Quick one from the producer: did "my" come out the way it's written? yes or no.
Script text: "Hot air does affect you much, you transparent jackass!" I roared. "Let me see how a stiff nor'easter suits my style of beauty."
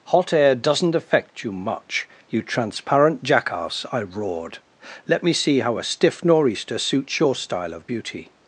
no